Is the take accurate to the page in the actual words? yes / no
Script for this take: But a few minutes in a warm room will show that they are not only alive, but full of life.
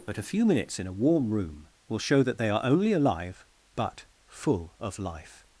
no